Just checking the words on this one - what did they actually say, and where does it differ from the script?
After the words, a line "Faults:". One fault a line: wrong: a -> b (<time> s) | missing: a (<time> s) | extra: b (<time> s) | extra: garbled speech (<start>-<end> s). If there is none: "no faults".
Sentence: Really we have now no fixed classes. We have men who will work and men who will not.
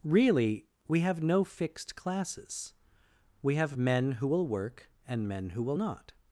Really we have no fixed classes. We have men who will work and men who will not.
Faults:
missing: now (1.2 s)